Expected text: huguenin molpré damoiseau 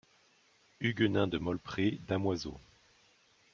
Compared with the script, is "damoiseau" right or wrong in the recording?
right